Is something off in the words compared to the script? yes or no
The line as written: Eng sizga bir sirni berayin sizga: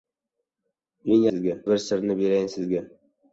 no